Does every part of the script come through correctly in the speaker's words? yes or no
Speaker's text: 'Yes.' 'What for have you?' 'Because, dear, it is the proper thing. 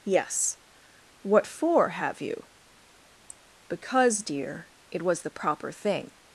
no